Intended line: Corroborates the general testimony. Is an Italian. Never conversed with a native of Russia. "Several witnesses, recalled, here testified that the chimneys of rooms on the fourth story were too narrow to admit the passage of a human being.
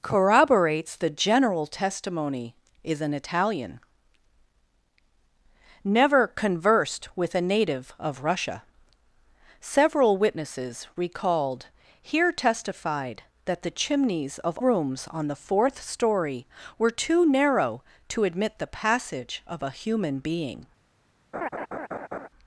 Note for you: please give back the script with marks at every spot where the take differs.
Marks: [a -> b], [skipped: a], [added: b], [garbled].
Corroborates the general testimony. Is an Italian. Never conversed with a native of Russia. "Several witnesses, recalled, here testified that the chimneys of rooms on the fourth story were too narrow to admit the passage of a human being.